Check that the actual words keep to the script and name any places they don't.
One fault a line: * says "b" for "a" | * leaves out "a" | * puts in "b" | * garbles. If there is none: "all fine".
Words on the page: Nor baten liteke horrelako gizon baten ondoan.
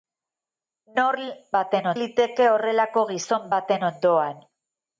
all fine